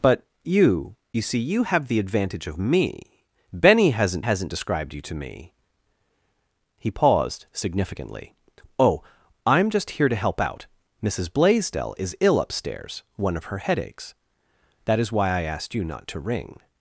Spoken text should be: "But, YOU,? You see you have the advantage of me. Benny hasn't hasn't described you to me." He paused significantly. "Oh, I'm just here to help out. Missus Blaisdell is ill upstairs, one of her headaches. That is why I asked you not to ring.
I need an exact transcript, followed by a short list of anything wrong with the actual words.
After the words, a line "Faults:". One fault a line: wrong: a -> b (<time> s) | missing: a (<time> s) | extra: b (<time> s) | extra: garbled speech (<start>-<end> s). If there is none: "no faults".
"But, YOU,? You see you have the advantage of me. Benny hasn't hasn't described you to me." He paused significantly. "Oh, I'm just here to help out. Missus Blaisdell is ill upstairs, one of her headaches. That is why I asked you not to ring.
Faults:
no faults